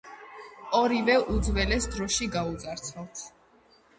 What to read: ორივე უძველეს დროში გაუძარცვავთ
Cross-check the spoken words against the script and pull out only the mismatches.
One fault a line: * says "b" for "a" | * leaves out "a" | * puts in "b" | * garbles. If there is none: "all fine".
all fine